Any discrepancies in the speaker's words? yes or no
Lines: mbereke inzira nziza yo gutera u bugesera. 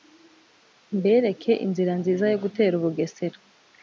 no